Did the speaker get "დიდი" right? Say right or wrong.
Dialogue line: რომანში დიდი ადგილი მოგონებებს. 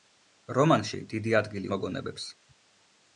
right